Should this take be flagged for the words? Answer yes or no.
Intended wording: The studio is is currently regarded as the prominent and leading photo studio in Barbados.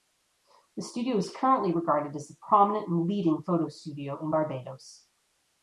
yes